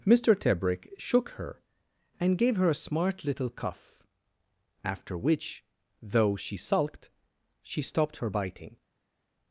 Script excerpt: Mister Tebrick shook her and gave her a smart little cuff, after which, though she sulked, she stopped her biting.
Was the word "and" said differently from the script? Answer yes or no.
no